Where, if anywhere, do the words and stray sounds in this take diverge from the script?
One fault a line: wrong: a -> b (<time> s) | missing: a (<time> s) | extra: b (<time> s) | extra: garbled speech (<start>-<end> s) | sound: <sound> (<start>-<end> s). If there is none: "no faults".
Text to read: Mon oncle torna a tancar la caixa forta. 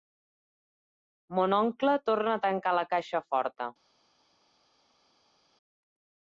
no faults